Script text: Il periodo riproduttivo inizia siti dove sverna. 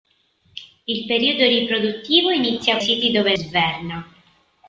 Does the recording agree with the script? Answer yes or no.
yes